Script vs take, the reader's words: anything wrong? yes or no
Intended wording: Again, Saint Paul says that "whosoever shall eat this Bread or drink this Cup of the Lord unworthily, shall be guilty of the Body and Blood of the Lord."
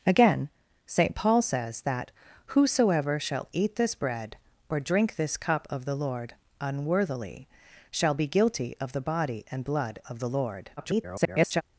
yes